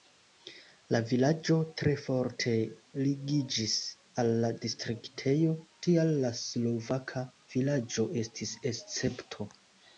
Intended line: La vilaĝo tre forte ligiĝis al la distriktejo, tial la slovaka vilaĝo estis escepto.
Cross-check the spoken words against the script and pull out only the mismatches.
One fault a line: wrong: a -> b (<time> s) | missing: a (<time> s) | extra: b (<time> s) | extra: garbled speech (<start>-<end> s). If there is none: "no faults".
no faults